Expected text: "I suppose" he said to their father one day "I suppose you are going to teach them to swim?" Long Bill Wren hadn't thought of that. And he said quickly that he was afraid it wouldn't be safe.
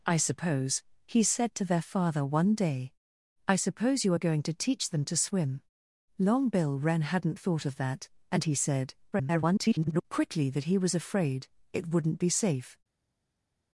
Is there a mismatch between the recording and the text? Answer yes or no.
yes